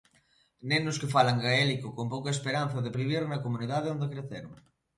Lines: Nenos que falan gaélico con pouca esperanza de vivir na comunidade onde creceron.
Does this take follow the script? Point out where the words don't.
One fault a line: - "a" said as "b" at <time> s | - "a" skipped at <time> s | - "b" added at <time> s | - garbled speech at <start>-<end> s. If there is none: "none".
none